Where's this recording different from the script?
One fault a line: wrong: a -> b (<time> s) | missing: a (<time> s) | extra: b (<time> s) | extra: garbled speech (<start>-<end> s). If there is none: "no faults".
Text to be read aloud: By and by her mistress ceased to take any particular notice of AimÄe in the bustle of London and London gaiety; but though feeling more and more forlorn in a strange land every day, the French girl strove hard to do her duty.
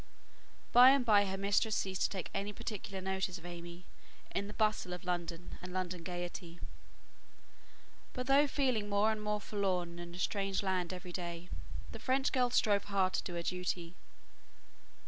no faults